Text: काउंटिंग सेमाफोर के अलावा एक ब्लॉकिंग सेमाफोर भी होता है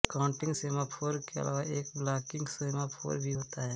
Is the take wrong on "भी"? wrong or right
right